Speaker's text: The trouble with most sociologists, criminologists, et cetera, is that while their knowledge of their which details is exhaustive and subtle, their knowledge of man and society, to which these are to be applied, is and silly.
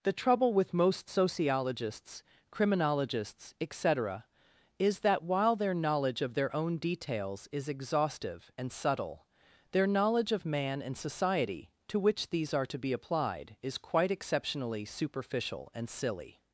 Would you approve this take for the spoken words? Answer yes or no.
no